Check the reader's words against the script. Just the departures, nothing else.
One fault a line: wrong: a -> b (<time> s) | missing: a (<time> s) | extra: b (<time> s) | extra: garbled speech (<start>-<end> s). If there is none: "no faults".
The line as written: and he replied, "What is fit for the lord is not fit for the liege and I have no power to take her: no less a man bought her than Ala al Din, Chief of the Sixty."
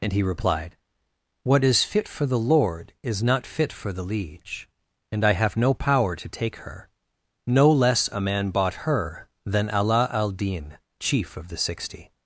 no faults